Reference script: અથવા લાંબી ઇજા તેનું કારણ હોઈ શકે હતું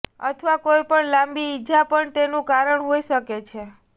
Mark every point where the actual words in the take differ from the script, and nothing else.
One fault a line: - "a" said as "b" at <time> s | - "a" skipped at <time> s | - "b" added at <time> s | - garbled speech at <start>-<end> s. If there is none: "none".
- "કોઈપણ" added at 0.6 s
- "પણ" added at 1.9 s
- "હતું" said as "છે" at 3.5 s